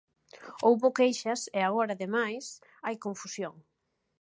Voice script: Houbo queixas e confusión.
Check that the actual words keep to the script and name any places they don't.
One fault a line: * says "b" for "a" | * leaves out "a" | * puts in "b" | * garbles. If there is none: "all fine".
* puts in "agora ademais hai"